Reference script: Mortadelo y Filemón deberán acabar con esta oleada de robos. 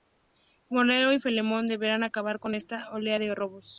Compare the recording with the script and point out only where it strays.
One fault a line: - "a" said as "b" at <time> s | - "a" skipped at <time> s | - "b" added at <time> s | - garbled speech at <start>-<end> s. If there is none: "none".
none